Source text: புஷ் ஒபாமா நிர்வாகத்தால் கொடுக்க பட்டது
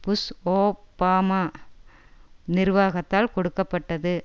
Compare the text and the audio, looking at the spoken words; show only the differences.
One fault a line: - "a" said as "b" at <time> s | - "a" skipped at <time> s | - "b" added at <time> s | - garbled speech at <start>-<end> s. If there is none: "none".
none